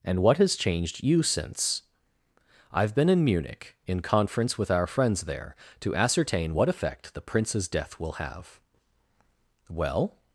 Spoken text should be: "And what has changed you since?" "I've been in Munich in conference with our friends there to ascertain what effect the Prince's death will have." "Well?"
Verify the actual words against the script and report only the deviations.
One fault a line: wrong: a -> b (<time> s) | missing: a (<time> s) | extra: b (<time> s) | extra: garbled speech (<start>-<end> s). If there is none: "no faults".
no faults